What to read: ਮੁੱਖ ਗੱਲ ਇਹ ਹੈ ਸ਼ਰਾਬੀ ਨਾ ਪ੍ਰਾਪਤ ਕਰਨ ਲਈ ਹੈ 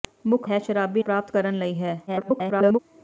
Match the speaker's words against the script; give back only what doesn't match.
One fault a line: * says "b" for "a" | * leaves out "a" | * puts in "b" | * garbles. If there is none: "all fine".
* leaves out "ਗੱਲ ਇਹ"
* leaves out "ਨਾ"
* garbles